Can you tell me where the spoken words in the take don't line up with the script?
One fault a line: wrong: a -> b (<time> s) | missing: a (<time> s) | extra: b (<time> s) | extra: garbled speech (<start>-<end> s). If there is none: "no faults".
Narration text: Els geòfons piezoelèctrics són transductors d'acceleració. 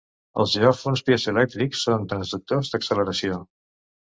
no faults